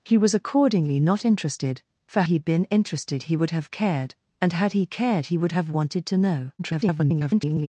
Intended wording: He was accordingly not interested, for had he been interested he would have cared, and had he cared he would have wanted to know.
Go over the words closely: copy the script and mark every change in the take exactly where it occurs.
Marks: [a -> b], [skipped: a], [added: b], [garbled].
He was accordingly not interested, for [skipped: had] he been interested he would have cared, and had he cared he would have wanted to know. [garbled]